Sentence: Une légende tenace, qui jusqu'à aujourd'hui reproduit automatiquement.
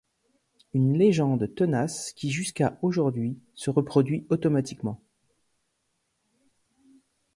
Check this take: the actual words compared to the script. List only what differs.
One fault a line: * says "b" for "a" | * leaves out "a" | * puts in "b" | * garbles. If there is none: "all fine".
* puts in "se"